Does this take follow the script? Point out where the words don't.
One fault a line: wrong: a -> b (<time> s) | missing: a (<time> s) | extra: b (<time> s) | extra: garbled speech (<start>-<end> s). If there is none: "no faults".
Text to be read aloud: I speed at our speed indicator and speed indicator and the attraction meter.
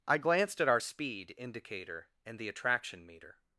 wrong: speed -> glanced (0.2 s)
missing: speed indicator and (2.4 s)